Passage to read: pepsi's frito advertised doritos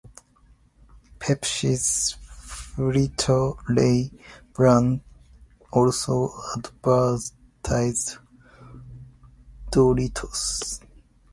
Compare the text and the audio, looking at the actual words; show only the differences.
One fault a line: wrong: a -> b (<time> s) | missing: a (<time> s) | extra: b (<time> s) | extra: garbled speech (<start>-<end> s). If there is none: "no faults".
extra: lay brand also (3.7 s)